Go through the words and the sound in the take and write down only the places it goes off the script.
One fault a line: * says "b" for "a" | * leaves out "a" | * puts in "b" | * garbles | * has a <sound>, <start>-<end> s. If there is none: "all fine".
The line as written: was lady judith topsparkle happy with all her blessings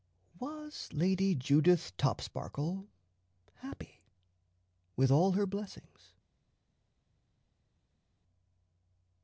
all fine